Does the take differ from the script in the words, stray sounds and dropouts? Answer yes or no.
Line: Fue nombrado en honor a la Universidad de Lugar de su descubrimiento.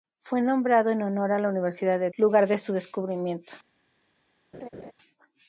yes